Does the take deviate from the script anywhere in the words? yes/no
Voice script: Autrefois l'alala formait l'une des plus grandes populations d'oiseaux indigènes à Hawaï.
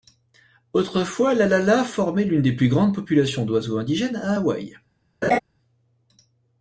no